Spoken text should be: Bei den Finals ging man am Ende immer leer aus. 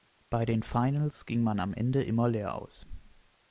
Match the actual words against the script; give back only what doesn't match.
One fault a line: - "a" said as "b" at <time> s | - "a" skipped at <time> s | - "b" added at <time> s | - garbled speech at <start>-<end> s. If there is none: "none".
none